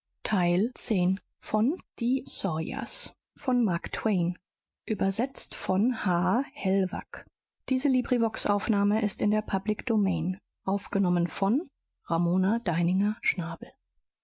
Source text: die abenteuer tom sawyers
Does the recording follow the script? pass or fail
fail